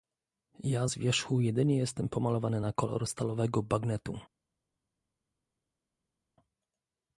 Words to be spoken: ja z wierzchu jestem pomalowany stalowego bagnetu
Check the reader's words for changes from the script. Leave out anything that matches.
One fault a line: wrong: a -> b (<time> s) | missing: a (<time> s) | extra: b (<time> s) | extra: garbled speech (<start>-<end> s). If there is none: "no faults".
extra: jedynie (1.4 s)
extra: na kolor (2.6 s)